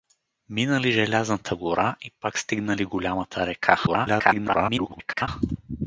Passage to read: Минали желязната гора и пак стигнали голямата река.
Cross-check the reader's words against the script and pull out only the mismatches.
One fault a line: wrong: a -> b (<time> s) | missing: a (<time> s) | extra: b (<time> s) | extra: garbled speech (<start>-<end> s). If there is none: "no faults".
extra: garbled speech (3.9-5.3 s)